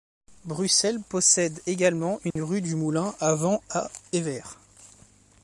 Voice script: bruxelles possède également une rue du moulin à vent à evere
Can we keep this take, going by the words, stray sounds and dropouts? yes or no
no